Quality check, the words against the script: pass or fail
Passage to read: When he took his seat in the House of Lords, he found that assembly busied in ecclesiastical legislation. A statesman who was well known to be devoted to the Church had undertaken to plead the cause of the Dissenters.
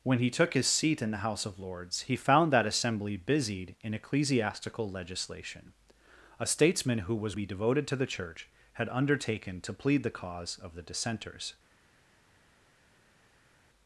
fail